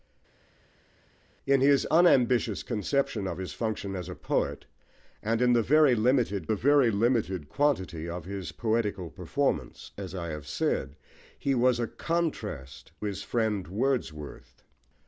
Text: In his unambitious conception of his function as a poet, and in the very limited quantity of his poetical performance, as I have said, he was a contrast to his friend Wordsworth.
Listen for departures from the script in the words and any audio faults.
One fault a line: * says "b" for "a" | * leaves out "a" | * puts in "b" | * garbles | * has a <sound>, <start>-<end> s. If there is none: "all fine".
* puts in "the very limited"
* leaves out "to"